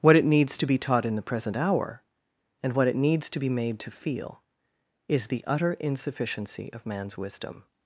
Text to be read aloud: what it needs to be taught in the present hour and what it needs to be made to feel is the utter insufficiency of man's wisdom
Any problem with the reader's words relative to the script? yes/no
no